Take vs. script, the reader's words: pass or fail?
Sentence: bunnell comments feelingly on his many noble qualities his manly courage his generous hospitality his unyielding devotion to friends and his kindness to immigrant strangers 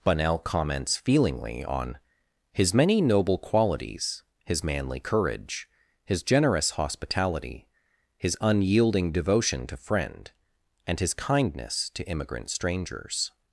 fail